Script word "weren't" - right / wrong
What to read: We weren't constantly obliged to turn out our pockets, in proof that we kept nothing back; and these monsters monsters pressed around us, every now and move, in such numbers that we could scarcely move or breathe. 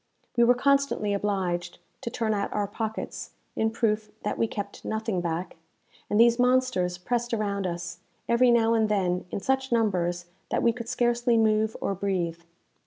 wrong